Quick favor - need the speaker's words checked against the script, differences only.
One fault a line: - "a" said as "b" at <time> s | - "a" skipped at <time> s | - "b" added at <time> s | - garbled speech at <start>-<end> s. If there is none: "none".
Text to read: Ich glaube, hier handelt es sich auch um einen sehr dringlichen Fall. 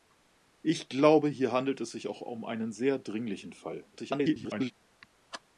- garbled speech at 3.9-4.7 s